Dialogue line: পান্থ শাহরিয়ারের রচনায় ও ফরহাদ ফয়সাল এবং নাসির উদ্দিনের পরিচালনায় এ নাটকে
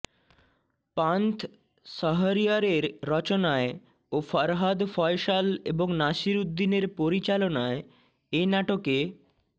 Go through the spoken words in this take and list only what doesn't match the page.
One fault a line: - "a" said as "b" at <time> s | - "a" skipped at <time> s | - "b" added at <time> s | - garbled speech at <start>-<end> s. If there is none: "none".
none